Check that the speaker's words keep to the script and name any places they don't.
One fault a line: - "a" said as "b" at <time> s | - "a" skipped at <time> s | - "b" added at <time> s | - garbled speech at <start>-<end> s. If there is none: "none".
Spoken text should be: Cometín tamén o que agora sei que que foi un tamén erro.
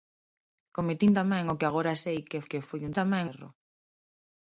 none